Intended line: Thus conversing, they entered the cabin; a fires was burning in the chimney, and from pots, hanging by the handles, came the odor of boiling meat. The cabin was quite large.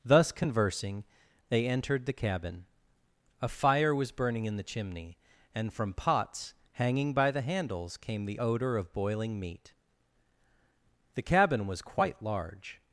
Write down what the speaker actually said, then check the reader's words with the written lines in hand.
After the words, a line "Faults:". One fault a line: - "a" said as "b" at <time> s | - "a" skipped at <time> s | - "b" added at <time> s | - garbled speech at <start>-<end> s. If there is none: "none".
Thus conversing, they entered the cabin; a fire was burning in the chimney, and from pots, hanging by the handles, came the odor of boiling meat. The cabin was quite large.
Faults:
- "fires" said as "fire" at 3.5 s